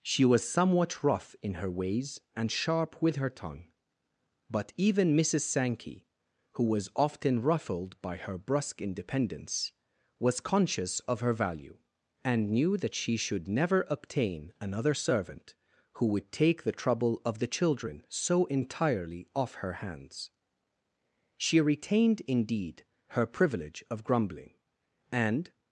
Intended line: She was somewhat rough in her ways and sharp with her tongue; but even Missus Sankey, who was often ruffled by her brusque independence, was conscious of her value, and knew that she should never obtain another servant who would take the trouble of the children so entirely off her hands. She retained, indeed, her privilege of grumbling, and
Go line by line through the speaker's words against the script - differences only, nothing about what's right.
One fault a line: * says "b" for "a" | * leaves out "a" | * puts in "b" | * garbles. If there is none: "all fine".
all fine